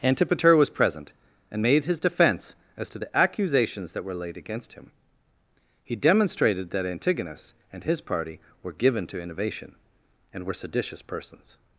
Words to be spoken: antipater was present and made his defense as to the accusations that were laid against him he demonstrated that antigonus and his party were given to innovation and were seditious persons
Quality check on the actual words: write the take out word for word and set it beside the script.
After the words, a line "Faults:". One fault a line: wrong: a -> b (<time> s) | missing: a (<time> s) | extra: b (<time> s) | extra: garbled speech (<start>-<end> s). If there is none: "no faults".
antipater was present and made his defense as to the accusations that were laid against him he demonstrated that antigonus and his party were given to innovation and were seditious persons
Faults:
no faults